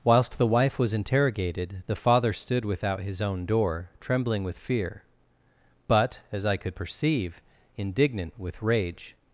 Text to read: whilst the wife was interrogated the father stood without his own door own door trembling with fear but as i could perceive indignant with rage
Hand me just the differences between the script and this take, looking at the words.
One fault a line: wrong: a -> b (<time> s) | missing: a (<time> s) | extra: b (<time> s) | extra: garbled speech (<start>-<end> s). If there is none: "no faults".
missing: own door (3.9 s)